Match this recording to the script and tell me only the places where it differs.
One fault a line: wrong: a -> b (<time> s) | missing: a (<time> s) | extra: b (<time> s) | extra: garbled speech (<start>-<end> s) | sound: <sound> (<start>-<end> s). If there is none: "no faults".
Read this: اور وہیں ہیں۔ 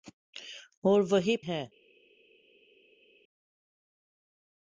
no faults